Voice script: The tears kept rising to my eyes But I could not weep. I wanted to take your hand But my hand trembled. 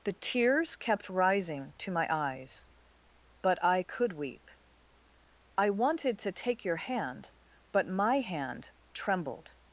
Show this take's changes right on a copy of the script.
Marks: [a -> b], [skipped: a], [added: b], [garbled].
The tears kept rising to my eyes But I could [skipped: not] weep. I wanted to take your hand But my hand trembled.